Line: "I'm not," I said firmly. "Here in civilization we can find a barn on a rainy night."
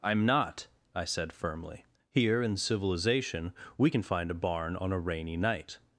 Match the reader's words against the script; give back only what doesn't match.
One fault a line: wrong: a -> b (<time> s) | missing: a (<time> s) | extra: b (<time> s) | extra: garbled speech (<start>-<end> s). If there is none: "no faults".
no faults